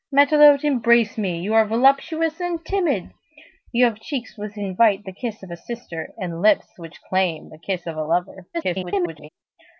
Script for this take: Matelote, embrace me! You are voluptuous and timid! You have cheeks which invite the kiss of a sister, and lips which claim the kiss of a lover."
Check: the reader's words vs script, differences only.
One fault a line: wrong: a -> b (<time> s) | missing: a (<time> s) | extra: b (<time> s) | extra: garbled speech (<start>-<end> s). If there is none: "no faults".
extra: garbled speech (8.5-9.3 s)